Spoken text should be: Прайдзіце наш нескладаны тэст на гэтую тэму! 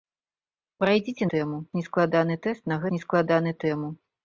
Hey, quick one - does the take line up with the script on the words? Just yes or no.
no